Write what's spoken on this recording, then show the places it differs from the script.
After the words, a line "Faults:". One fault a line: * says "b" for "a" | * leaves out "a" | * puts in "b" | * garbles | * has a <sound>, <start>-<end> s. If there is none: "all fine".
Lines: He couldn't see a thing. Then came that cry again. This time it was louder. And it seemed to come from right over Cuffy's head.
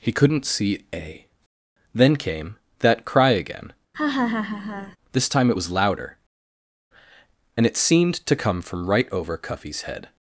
He couldn't see a. Then came that cry again. This time it was louder. And it seemed to come from right over Cuffy's head.
Faults:
* leaves out "thing"
* has a laugh, 3.9-5.0 s